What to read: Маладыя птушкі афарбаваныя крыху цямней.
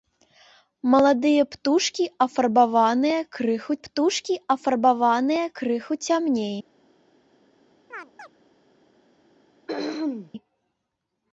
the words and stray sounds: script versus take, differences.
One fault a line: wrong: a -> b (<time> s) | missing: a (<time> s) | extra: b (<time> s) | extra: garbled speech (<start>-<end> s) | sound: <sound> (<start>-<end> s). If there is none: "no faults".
extra: птушкі афарбаваныя крыху (3.9 s)
sound: chirp (7.9-8.3 s)
sound: throat clearing (9.7-10.3 s)